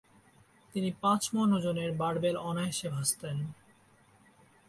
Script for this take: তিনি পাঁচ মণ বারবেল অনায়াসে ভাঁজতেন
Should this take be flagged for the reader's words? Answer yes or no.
yes